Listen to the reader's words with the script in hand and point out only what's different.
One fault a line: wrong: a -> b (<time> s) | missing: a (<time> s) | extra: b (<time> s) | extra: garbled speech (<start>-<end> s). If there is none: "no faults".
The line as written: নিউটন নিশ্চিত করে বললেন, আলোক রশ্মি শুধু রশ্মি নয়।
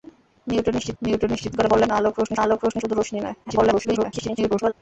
extra: নিউটন নিশ্চিত (1.0 s)
extra: আলোক রশ্মি (2.4 s)
extra: garbled speech (3.4-4.7 s)